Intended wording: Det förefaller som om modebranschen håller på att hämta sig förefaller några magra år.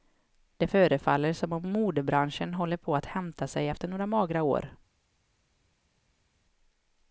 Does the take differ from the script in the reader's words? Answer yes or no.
yes